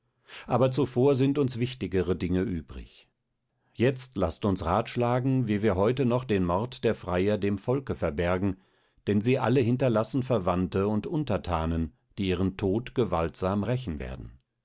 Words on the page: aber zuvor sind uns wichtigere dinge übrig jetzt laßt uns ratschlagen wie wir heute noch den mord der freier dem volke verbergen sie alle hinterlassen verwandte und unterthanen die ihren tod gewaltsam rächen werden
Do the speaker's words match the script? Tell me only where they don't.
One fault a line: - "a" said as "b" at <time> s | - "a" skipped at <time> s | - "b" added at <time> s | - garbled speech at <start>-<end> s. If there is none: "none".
- "denn" added at 9.1 s